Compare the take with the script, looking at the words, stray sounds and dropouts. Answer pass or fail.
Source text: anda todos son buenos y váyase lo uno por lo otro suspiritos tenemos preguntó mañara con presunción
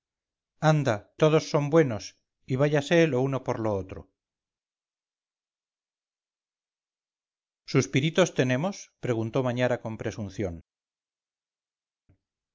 pass